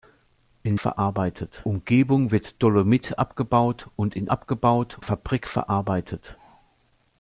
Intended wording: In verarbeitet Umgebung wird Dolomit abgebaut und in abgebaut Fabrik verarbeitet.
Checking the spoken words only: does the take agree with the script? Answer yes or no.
yes